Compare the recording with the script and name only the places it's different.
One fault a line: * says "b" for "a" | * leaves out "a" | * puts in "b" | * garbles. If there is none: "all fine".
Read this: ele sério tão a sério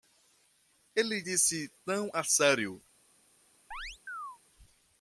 * says "disse" for "sério"